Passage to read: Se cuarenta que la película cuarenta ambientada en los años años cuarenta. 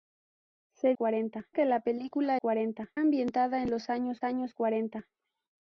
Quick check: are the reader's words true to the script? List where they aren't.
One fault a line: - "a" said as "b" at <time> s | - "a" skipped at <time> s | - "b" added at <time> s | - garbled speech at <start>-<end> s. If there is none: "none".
none